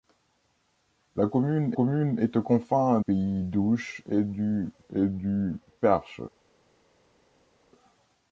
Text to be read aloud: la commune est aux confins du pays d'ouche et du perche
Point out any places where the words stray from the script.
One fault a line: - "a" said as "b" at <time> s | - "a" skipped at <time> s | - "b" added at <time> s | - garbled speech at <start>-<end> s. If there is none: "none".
- "commune" added at 1.7 s
- "du" skipped at 3.0 s
- "et du" added at 4.9 s